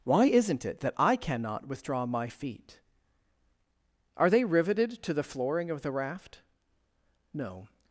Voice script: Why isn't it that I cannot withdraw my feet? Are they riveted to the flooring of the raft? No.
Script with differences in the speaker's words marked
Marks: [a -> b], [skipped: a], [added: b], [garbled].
Why isn't it that I cannot withdraw my feet? Are they riveted to the flooring of the raft? No.